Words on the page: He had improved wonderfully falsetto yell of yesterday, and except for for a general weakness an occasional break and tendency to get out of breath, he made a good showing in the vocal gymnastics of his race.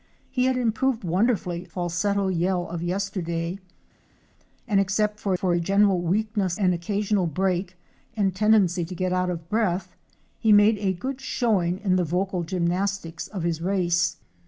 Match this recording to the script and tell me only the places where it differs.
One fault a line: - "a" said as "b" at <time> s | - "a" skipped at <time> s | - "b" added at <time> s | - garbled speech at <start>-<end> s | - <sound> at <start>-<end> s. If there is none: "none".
none